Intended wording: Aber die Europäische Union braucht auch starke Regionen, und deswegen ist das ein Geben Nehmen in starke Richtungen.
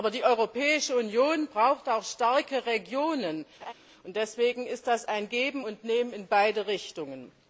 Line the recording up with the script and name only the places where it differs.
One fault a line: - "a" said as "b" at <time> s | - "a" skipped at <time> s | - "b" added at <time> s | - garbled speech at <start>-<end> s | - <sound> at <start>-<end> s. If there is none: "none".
- laugh at 3.6-3.7 s
- "und" added at 5.6 s
- "starke" said as "beide" at 6.3 s